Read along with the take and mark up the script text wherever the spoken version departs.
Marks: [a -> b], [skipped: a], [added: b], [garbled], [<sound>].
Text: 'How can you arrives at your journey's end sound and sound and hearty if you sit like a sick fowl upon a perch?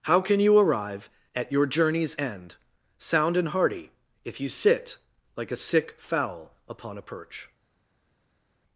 'How can you [arrives -> arrive] at your journey's end sound and [skipped: sound and] hearty if you sit like a sick fowl upon a perch?